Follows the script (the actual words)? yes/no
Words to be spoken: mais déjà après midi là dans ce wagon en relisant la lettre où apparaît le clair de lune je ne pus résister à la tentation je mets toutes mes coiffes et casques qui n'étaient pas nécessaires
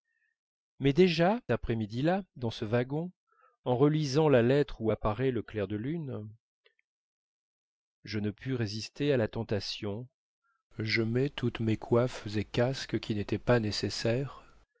yes